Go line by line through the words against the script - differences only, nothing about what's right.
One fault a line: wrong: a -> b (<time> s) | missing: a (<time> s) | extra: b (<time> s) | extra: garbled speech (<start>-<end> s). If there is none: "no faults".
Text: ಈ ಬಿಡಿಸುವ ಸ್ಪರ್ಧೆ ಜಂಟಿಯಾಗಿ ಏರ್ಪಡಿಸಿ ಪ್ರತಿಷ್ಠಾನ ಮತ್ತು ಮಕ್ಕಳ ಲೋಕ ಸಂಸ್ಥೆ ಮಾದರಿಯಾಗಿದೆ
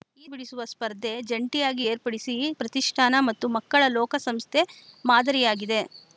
no faults